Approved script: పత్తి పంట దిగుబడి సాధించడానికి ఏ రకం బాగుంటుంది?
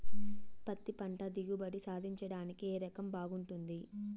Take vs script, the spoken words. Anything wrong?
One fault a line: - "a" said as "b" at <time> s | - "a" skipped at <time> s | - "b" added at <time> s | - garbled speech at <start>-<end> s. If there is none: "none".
none